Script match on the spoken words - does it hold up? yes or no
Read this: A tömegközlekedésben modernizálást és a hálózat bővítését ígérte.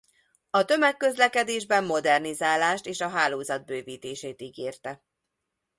yes